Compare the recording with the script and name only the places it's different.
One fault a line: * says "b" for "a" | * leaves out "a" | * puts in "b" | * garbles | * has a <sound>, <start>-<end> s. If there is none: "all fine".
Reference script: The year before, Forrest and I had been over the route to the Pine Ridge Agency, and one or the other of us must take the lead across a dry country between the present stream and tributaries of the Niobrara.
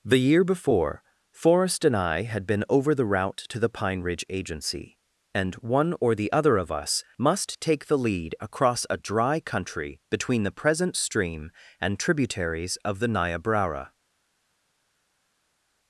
all fine